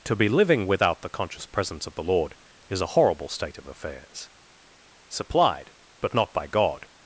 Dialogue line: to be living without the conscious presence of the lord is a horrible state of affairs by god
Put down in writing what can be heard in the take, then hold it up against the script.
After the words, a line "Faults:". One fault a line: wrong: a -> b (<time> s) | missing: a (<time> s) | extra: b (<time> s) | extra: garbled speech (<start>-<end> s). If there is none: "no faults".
to be living without the conscious presence of the lord is a horrible state of affairs supplied but not by god
Faults:
extra: supplied but not (5.1 s)